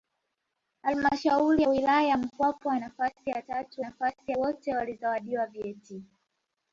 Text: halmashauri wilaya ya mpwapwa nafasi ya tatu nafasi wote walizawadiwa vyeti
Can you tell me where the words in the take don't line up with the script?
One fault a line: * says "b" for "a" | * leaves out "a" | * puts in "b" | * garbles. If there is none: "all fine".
all fine